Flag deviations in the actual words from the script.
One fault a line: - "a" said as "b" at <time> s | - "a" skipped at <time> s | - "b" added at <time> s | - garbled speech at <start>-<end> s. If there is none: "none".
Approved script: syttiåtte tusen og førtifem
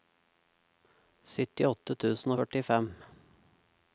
none